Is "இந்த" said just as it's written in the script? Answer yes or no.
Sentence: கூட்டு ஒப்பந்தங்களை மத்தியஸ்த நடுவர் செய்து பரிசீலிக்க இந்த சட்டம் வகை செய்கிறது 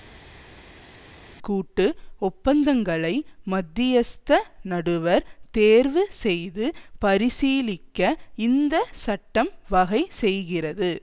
yes